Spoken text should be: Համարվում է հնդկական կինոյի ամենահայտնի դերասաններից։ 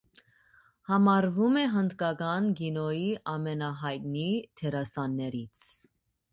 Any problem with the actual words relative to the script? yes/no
no